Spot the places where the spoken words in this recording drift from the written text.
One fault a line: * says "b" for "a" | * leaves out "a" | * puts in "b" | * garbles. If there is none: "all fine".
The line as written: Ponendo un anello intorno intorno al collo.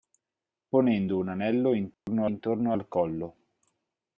all fine